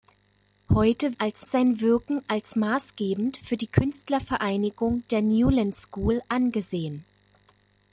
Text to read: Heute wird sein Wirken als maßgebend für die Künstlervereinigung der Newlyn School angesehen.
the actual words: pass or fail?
fail